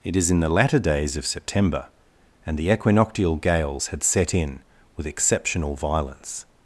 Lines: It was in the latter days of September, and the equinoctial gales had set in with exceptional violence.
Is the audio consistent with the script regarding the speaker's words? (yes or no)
no